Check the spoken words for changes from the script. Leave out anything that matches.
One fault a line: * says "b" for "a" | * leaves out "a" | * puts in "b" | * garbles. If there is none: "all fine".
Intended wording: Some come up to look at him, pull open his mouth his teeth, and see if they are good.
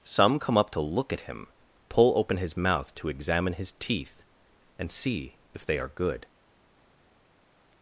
* puts in "to examine"